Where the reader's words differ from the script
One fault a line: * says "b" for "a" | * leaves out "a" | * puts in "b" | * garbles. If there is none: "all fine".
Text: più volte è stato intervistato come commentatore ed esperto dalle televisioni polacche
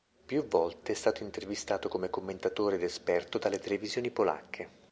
all fine